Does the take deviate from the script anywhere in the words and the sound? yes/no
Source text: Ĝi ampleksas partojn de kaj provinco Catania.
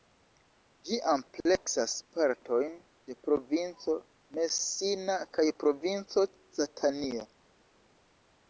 yes